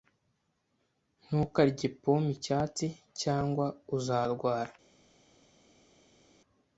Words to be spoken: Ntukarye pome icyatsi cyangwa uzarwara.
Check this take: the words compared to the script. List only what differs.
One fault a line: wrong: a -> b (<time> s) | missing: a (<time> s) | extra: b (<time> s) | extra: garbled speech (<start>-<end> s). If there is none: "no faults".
no faults